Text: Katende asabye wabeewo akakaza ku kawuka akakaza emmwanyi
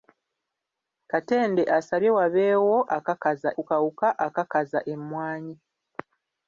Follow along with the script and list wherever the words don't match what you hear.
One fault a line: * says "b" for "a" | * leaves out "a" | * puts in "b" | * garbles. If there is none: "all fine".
all fine